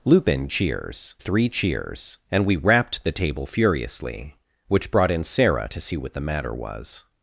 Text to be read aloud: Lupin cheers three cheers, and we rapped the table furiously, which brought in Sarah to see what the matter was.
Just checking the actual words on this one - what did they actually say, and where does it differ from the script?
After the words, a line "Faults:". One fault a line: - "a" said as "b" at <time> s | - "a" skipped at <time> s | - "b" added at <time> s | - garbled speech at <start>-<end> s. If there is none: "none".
Lupin cheers three cheers, and we rapped the table furiously, which brought in Sarah to see what the matter was.
Faults:
none